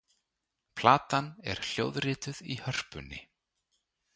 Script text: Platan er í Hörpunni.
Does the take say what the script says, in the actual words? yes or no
no